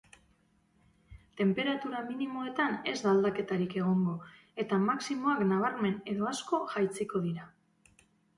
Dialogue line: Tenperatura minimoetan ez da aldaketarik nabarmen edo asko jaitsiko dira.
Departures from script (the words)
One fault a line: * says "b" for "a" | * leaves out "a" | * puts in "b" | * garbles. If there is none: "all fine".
* puts in "egongo eta maximoak"